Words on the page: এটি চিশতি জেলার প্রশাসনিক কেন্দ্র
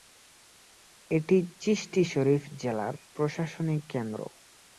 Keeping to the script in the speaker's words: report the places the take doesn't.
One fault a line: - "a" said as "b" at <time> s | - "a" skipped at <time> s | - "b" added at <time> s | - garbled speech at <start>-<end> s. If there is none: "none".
- "শরীফ" added at 2.0 s